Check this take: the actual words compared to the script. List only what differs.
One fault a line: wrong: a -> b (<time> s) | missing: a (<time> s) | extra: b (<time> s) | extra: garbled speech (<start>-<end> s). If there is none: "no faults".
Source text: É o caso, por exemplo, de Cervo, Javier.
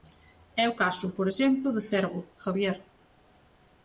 no faults